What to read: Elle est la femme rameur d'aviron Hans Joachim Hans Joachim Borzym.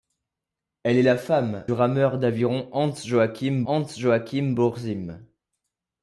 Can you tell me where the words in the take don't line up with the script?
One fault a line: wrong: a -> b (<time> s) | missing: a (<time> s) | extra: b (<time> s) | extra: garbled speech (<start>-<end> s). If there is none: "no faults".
no faults